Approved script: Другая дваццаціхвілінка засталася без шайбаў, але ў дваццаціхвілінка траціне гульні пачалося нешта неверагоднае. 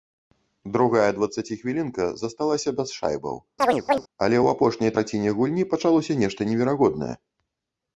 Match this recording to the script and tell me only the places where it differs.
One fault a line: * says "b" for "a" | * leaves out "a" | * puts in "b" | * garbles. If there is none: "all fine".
* says "апошняй" for "дваццаціхвілінка"